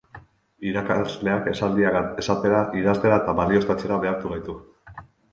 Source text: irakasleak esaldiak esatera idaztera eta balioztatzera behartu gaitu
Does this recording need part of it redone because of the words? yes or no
no